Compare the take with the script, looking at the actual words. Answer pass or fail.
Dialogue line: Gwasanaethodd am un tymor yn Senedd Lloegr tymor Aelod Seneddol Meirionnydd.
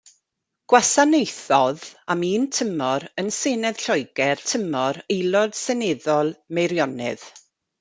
pass